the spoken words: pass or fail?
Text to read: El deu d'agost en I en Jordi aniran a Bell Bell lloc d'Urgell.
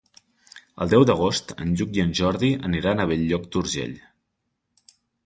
fail